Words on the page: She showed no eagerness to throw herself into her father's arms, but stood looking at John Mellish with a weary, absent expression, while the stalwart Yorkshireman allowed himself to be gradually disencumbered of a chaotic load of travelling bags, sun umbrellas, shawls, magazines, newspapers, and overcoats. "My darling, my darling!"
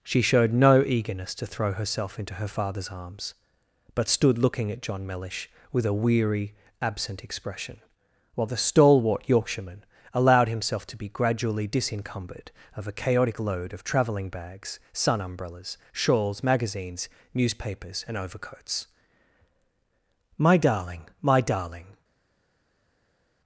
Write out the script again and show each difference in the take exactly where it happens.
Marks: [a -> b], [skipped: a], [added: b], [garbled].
She showed no eagerness to throw herself into her father's arms, but stood looking at John Mellish with a weary, absent expression, while the stalwart Yorkshireman allowed himself to be gradually disencumbered of a chaotic load of travelling bags, sun umbrellas, shawls, magazines, newspapers, and overcoats. "My darling, my darling!"